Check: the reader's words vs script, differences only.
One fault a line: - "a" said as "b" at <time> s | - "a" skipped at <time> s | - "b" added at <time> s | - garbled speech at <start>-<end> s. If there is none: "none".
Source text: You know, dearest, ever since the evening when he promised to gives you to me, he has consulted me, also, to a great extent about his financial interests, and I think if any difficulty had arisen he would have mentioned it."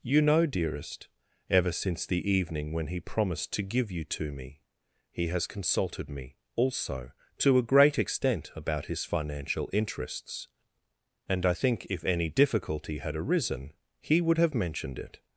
- "gives" said as "give" at 3.6 s